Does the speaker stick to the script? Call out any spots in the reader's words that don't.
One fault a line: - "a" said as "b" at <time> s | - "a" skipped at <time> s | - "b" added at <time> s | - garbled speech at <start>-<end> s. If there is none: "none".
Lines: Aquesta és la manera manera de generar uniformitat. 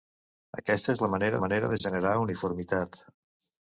none